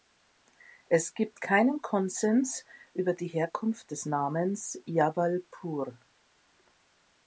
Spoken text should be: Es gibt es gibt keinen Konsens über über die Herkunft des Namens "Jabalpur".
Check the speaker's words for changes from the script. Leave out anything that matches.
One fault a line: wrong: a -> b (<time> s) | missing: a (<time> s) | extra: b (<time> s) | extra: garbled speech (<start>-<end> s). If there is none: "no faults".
missing: es gibt (1.4 s)
missing: über (3.1 s)